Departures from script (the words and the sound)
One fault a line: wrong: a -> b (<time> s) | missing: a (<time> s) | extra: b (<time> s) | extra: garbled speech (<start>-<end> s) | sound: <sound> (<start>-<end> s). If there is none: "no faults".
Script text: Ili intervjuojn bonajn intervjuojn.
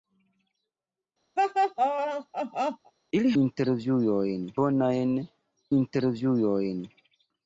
sound: laugh (1.4-2.9 s)